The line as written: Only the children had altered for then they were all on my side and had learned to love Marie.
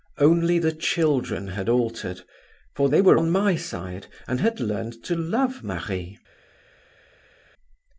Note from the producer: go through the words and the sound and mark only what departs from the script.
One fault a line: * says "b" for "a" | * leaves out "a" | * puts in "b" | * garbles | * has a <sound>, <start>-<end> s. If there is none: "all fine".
* leaves out "then"
* leaves out "all"